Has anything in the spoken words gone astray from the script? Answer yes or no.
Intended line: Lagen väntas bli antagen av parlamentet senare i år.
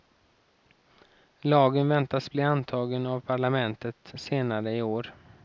no